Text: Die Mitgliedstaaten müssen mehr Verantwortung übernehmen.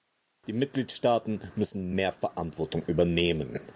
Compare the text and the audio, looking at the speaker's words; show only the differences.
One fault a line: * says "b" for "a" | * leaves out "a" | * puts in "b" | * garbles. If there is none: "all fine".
all fine